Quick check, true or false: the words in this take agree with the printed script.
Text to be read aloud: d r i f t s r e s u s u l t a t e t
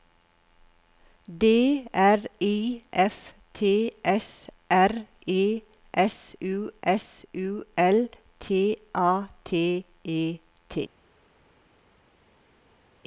true